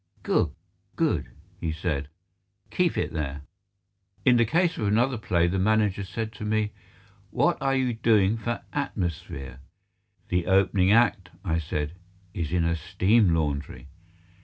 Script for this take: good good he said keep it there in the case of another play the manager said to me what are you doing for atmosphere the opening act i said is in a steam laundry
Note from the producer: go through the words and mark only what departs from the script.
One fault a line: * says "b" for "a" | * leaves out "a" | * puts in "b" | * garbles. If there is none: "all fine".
all fine